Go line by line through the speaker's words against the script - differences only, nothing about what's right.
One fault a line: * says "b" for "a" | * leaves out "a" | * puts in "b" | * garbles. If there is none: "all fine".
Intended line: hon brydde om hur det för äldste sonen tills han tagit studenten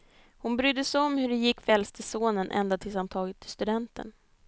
* puts in "sig"
* puts in "gick"
* puts in "ända"